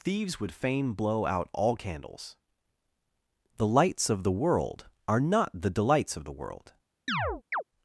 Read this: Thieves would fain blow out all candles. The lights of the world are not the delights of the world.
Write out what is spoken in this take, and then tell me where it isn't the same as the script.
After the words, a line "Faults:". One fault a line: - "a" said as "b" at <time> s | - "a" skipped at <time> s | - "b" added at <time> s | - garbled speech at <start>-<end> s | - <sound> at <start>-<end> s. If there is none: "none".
Thieves would fain blow out all candles. The lights of the world are not the delights of the world.
Faults:
- chirp at 7.1-7.6 s